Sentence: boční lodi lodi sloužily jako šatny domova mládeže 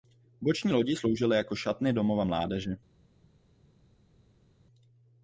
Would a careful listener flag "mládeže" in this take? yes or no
no